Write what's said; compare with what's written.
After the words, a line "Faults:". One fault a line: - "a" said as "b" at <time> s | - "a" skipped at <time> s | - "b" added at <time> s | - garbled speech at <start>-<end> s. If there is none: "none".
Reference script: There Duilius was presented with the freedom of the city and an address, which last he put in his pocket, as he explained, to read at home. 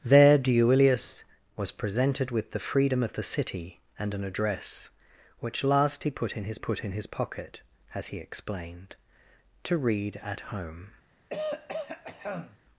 There Duilius was presented with the freedom of the city and an address, which last he put in his put in his pocket, as he explained, to read at home.
Faults:
- "put in his" added at 6.6 s